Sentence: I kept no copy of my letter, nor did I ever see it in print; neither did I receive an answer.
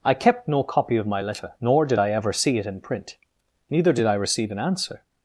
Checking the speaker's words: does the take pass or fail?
pass